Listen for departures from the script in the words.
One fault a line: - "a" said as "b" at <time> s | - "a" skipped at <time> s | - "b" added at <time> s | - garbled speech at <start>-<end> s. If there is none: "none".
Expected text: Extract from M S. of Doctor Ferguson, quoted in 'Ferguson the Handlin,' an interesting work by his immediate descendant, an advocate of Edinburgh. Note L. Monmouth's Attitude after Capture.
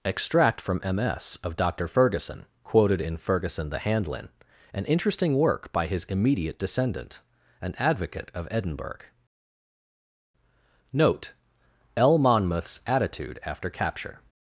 none